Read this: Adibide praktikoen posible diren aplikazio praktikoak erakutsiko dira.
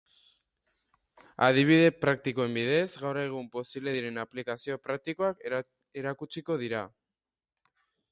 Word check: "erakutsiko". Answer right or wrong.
right